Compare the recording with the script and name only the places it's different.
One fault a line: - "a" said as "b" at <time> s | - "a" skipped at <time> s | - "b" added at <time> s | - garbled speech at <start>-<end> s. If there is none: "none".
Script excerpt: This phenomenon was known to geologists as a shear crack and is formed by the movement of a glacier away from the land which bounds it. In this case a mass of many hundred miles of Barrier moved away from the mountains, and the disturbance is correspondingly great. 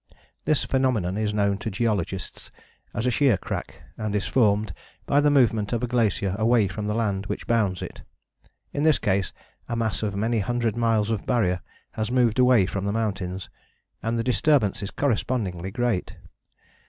- "was" said as "is" at 1.1 s
- "has" added at 11.9 s